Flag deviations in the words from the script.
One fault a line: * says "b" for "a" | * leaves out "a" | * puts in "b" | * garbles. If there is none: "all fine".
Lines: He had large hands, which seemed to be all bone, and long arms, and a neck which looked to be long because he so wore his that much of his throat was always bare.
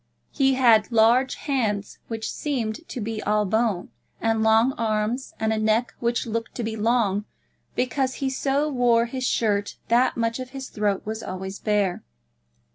* puts in "shirt"